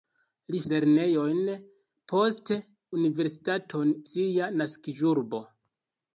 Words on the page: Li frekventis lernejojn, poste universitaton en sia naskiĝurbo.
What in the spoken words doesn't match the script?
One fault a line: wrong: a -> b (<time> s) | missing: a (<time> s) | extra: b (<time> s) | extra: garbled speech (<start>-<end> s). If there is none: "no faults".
missing: frekventis (0.6 s)
missing: en (3.9 s)